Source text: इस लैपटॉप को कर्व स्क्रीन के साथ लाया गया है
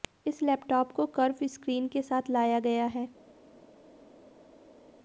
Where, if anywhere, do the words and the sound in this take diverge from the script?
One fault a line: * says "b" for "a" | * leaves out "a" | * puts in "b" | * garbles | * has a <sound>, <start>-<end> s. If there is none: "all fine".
all fine